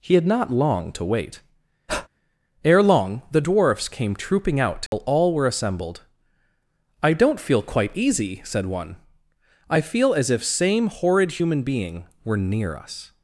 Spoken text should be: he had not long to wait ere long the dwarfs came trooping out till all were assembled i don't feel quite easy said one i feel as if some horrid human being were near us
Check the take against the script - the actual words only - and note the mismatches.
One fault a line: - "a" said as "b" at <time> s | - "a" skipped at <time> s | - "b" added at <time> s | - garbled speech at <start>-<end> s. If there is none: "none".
- "some" said as "same" at 10.4 s